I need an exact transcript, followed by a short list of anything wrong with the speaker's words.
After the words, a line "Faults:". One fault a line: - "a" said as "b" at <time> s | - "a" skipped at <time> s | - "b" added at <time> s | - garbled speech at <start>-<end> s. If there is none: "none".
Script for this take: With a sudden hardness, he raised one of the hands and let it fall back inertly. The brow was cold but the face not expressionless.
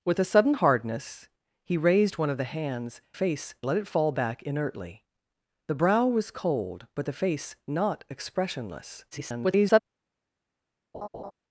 With a sudden hardness, he raised one of the hands face let it fall back inertly. The brow was cold but the face not expressionless. [garbled]
Faults:
- "and" said as "face" at 3.1 s
- garbled speech at 9.1-9.8 s